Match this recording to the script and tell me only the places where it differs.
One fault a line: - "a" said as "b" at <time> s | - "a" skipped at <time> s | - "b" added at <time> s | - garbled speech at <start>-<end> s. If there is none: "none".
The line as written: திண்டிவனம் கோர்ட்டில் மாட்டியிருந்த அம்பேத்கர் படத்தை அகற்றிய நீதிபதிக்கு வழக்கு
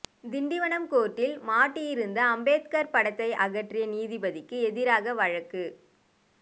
- "எதிராக" added at 4.6 s